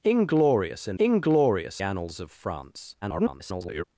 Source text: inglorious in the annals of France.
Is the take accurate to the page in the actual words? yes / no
no